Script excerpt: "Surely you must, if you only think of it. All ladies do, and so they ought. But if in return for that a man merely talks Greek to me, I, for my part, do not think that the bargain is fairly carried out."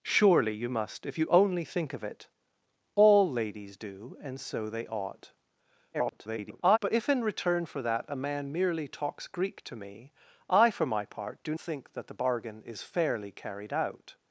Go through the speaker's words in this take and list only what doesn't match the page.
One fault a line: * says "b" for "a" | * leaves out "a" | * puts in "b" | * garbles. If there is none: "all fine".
* garbles
* leaves out "not"